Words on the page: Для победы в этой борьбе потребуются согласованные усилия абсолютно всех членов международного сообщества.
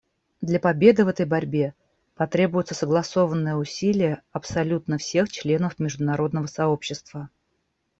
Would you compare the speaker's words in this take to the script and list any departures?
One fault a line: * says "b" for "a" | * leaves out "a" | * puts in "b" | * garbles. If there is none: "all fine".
all fine